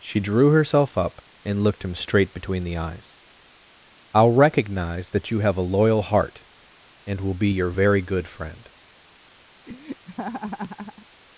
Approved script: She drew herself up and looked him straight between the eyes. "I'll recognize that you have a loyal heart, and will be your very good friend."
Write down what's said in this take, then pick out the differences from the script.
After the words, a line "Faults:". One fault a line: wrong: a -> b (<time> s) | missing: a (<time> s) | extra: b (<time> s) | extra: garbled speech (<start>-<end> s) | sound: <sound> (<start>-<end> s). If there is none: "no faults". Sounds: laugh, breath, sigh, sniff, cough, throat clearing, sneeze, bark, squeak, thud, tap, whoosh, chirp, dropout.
She drew herself up and looked him straight between the eyes. "I'll recognize that you have a loyal heart, and will be your very good friend."
Faults:
sound: laugh (9.7-11.1 s)